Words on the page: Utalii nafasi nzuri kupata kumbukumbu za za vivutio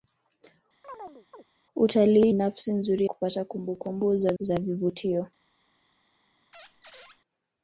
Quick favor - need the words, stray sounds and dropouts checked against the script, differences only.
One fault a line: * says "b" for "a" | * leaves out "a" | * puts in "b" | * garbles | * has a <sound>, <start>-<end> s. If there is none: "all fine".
* has a chirp, 0.8-1.4 s
* has a squeak, 6.5-7.2 s